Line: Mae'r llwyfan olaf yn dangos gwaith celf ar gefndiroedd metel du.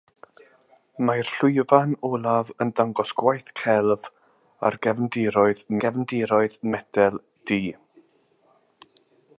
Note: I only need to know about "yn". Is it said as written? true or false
true